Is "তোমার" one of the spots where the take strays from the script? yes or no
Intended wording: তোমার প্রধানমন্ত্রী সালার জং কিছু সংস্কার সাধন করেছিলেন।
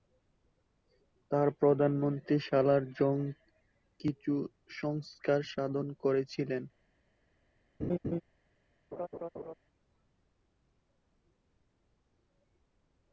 yes